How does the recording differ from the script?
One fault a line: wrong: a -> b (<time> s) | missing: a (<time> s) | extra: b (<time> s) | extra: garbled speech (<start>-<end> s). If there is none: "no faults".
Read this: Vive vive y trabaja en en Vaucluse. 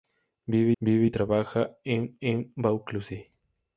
no faults